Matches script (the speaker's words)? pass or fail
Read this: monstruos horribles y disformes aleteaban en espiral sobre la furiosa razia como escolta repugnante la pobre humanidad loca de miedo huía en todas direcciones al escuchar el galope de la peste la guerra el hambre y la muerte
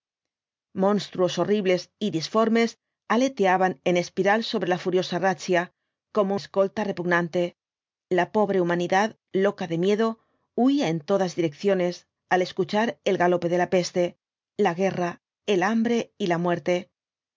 pass